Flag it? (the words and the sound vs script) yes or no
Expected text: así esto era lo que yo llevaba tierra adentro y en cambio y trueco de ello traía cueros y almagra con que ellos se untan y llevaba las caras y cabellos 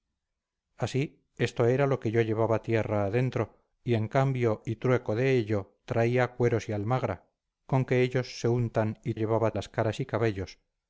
no